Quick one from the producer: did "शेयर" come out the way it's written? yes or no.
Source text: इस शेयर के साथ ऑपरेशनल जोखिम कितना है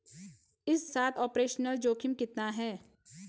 no